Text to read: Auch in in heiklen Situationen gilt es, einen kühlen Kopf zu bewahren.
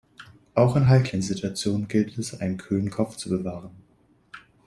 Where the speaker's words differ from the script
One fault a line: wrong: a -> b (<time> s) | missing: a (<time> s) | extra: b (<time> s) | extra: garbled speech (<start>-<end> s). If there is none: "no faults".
missing: in (0.9 s)